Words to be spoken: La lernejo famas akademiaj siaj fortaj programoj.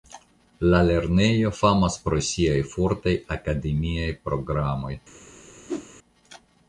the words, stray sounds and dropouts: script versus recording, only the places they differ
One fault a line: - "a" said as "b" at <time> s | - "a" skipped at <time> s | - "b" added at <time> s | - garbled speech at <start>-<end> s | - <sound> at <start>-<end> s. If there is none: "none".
- "akademiaj" said as "pro" at 2.1 s
- "akademiaj" added at 3.4 s
- whoosh at 5.7-5.9 s